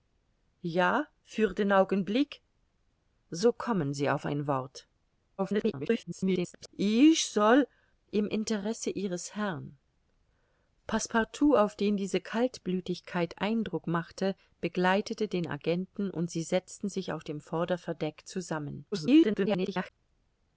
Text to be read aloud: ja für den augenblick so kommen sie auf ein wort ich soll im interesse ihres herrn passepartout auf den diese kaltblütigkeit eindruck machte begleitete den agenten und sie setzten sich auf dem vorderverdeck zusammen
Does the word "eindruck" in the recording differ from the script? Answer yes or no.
no